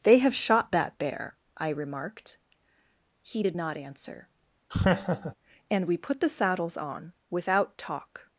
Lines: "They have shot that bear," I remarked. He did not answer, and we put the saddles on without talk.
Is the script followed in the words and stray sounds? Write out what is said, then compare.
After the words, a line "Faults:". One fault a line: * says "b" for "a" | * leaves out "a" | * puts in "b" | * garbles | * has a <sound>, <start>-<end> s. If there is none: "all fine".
"They have shot that bear," I remarked. He did not answer, and we put the saddles on without talk.
Faults:
* has a laugh, 4.7-5.4 s